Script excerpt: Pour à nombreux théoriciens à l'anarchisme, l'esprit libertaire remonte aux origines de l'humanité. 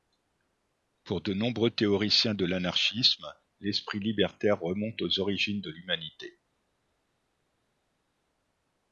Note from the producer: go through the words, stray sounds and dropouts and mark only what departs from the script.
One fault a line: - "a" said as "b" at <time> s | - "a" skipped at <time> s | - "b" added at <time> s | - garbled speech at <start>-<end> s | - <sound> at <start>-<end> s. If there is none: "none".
- "à" said as "de" at 1.2 s
- "à" said as "de" at 2.3 s